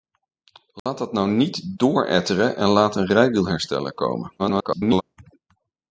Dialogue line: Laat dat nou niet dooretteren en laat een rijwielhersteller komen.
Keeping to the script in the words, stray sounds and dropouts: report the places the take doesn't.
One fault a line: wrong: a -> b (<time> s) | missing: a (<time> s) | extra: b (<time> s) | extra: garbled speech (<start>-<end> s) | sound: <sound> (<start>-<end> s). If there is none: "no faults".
sound: dropout (0.8-0.9 s)
extra: garbled speech (4.4-5.0 s)